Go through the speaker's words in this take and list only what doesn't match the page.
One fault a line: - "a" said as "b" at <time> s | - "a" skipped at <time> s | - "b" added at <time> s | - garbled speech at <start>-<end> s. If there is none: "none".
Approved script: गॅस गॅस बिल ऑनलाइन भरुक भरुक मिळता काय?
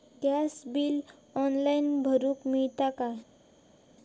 - "गॅस" skipped at 0.6 s
- "भरुक" skipped at 2.5 s